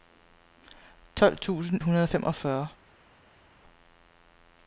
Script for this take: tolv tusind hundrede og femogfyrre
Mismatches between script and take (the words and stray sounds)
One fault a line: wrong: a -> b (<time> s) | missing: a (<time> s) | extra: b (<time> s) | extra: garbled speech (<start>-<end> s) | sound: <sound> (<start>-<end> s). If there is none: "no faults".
no faults